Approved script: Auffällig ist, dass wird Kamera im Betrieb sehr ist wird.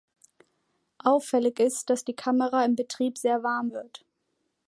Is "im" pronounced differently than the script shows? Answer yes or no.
no